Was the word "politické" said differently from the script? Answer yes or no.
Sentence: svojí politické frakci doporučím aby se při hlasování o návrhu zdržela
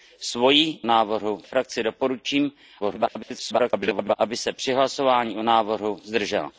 yes